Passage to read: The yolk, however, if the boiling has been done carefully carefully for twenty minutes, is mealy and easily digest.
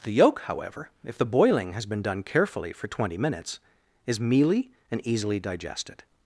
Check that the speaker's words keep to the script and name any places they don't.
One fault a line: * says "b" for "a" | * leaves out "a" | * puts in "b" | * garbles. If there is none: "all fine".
* leaves out "carefully"
* says "digested" for "digest"